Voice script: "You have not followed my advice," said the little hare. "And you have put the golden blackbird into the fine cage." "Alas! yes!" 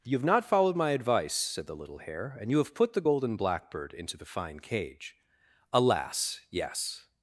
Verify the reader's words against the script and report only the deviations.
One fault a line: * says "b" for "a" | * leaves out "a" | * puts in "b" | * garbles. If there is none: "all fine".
all fine